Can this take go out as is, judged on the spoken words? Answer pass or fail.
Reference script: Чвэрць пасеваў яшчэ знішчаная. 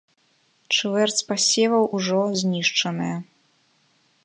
fail